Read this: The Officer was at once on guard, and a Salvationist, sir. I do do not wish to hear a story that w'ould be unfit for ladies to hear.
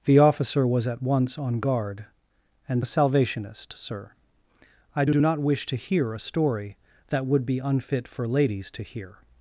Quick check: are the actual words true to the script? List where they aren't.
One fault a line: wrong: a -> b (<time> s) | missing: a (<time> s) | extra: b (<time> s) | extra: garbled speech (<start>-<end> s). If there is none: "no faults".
no faults